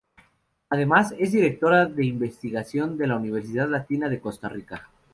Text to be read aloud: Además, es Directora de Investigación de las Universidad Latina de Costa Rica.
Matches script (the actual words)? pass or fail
fail